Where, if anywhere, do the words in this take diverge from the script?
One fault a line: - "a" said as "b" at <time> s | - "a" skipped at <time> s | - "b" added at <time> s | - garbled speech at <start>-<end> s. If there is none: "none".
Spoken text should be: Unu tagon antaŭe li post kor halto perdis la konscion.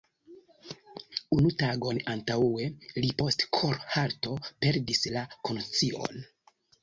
none